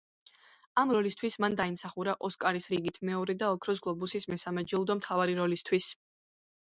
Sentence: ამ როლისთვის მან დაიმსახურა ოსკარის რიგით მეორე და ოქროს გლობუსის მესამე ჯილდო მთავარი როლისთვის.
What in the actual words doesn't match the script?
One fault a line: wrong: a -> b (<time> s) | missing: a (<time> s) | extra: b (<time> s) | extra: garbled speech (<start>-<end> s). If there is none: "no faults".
no faults